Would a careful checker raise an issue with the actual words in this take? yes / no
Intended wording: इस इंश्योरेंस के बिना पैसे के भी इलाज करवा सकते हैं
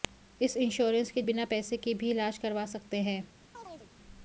no